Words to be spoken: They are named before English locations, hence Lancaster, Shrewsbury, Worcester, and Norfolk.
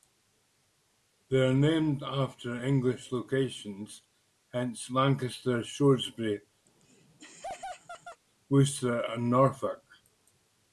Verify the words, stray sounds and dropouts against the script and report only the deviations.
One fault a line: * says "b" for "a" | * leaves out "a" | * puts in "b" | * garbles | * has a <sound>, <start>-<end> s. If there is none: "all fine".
* says "after" for "before"
* has a laugh, 6.7-8.2 s